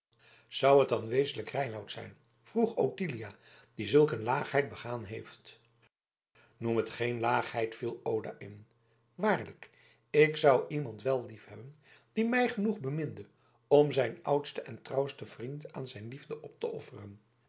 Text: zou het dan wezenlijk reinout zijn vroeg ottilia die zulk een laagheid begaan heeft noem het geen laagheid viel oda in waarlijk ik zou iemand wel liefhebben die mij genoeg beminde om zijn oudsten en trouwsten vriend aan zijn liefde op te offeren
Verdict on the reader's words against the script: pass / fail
pass